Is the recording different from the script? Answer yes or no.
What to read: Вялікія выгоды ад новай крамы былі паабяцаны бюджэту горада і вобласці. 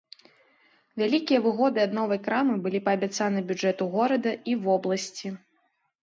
no